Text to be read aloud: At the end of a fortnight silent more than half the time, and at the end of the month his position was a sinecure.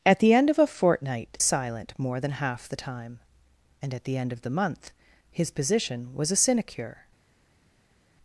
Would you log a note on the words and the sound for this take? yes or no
no